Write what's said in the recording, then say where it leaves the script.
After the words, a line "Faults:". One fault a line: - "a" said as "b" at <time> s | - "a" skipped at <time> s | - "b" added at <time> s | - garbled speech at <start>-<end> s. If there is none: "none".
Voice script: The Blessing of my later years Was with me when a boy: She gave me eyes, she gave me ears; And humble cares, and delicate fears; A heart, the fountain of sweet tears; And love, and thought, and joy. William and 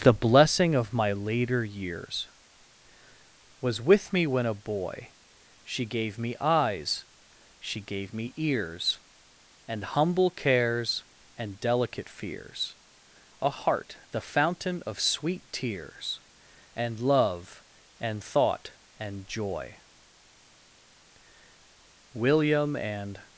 The Blessing of my later years Was with me when a boy: She gave me eyes, she gave me ears; And humble cares, and delicate fears; A heart, the fountain of sweet tears; And love, and thought, and joy. William and
Faults:
none